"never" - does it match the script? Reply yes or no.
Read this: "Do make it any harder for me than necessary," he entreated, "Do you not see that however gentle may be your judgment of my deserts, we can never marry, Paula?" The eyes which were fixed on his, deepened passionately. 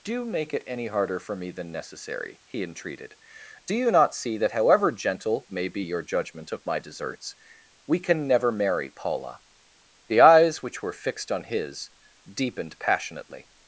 yes